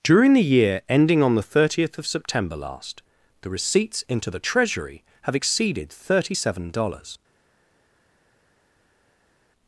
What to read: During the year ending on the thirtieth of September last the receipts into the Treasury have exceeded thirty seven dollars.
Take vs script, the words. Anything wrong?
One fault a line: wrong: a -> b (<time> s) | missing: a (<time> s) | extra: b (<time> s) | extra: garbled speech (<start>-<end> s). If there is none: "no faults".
no faults